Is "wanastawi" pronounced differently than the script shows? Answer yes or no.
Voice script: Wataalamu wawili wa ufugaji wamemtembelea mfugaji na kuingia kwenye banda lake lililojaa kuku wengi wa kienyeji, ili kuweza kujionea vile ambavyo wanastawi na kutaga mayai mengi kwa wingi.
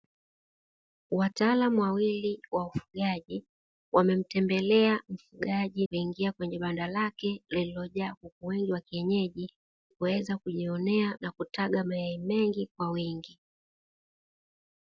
yes